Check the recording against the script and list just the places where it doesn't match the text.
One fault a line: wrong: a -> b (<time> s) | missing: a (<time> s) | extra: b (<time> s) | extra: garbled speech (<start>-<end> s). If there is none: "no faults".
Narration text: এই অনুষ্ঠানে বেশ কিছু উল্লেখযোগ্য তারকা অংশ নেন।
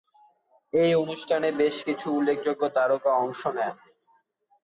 no faults